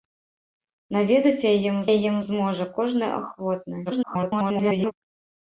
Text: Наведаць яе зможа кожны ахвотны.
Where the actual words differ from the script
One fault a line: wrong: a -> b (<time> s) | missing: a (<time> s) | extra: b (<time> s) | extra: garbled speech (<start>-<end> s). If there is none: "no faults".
extra: яе (1.9 s)
extra: garbled speech (3.9-4.9 s)